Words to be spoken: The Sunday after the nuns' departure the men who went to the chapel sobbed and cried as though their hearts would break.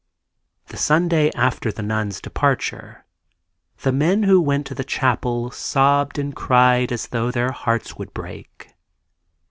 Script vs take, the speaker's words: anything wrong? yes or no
no